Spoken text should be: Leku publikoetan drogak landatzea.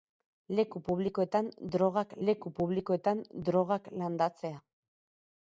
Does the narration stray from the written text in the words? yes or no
yes